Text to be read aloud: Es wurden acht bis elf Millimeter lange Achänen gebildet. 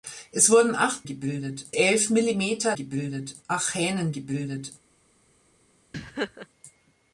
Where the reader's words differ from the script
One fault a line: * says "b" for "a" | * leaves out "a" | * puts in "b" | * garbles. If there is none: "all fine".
* says "gebildet" for "bis"
* says "gebildet" for "lange"